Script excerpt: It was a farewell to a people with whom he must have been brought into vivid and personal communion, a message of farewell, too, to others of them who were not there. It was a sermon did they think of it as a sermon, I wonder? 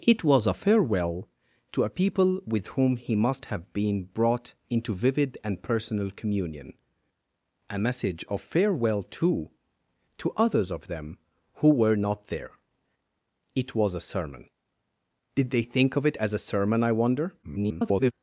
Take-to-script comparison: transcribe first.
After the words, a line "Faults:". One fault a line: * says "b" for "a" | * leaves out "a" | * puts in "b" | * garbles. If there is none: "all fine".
It was a farewell to a people with whom he must have been brought into vivid and personal communion, a message of farewell, too, to others of them who were not there. It was a sermon did they think of it as a sermon, I wonder? [garbled]
Faults:
* garbles